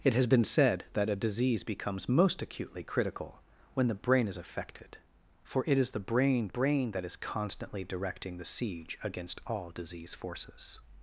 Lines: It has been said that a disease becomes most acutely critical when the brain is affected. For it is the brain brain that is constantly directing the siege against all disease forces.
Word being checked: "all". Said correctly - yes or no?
yes